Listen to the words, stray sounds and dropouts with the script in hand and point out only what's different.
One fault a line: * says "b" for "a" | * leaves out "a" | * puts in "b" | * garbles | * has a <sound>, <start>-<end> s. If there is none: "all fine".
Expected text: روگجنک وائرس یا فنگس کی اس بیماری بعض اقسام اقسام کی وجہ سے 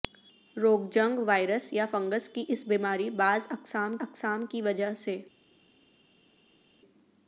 all fine